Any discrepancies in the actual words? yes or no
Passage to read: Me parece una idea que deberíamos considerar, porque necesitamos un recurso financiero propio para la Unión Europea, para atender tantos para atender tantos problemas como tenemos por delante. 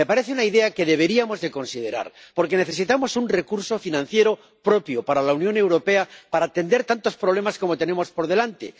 yes